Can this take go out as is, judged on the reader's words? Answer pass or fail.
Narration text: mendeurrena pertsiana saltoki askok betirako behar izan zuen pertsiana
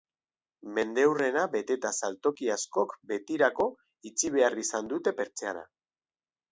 fail